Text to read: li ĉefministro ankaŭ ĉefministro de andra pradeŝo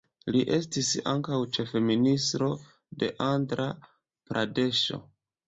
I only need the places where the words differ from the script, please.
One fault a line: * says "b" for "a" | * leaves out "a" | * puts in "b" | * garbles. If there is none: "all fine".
* says "estis" for "ĉefministro"